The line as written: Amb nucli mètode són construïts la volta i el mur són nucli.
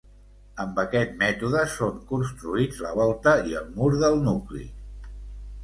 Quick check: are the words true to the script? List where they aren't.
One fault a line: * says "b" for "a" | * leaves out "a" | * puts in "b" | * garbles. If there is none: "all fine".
* says "aquest" for "nucli"
* says "del" for "són"